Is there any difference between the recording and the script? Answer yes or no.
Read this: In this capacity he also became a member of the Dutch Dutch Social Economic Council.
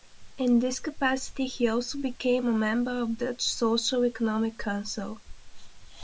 yes